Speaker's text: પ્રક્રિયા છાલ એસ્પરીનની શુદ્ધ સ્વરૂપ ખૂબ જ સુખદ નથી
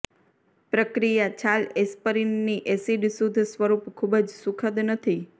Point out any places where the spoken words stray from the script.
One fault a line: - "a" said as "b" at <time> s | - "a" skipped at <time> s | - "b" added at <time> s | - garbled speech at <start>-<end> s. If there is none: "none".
- "એસિડ" added at 2.8 s